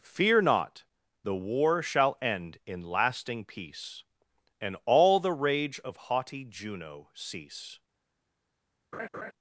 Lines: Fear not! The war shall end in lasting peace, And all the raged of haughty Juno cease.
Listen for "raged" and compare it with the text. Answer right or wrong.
wrong